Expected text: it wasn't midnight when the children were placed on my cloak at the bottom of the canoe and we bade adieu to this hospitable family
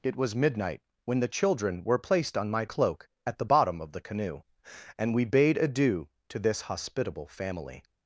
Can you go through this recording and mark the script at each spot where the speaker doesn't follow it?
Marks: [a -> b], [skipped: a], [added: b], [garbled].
it [wasn't -> was] midnight when the children were placed on my cloak at the bottom of the canoe and we bade adieu to this hospitable family